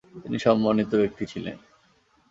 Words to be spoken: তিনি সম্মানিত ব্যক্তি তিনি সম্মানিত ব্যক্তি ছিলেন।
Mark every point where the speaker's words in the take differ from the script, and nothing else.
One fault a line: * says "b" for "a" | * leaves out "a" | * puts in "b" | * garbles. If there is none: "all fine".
* leaves out "তিনি সম্মানিত ব্যক্তি"